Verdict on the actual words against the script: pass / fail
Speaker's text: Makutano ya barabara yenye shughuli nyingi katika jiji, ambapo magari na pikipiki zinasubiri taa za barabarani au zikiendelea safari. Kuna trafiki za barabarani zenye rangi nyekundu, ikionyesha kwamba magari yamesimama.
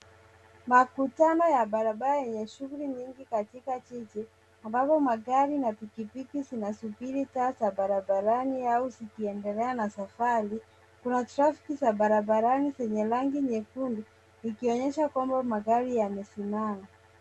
fail